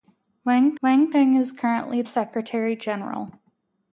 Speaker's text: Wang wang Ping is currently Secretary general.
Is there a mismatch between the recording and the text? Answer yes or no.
no